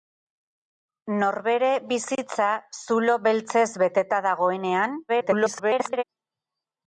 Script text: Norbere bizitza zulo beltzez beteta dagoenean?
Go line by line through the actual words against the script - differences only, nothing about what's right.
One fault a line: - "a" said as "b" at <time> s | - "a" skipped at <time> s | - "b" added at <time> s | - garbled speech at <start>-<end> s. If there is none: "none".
- garbled speech at 5.1-6.0 s